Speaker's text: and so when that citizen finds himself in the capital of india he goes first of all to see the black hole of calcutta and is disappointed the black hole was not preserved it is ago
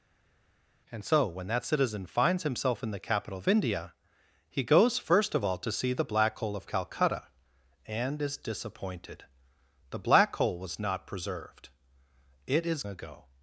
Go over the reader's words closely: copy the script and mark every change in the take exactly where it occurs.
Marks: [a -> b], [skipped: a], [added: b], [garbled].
and so when that citizen finds himself in the capital of india he goes first of all to see the black hole of calcutta and is disappointed the black hole was not preserved it is ago